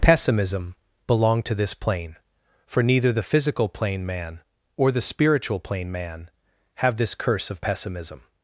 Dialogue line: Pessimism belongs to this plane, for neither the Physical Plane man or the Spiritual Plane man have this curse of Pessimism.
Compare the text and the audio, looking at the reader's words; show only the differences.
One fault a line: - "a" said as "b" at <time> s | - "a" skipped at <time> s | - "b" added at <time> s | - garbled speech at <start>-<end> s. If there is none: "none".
- "belongs" said as "belong" at 1.1 s